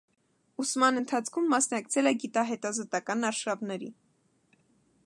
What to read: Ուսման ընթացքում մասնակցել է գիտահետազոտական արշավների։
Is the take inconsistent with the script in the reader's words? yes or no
no